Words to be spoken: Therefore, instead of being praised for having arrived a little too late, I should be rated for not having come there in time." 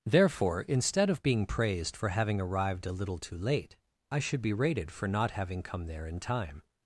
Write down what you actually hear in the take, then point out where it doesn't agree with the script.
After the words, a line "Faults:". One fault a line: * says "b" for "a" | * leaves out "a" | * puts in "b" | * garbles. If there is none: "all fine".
Therefore, instead of being praised for having arrived a little too late, I should be rated for not having come there in time."
Faults:
all fine